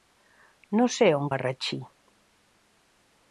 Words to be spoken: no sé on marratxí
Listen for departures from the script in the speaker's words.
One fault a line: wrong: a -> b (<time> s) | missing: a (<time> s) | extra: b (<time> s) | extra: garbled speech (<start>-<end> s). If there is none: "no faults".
no faults